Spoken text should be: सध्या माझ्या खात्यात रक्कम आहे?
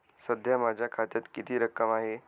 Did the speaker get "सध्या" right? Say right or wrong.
right